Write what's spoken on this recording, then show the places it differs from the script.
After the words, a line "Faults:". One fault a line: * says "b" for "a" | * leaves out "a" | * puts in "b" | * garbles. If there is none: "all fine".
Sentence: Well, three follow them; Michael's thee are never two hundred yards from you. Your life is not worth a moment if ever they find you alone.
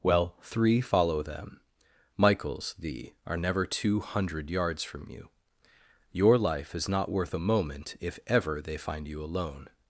Well, three follow them; Michael's thee are never two hundred yards from you. Your life is not worth a moment if ever they find you alone.
Faults:
all fine